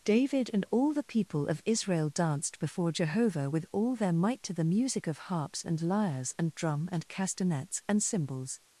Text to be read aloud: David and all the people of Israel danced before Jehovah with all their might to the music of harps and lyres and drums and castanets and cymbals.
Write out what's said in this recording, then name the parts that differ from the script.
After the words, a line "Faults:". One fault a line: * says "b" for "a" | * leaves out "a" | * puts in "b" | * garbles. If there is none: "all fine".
David and all the people of Israel danced before Jehovah with all their might to the music of harps and lyres and drum and castanets and cymbals.
Faults:
* says "drum" for "drums"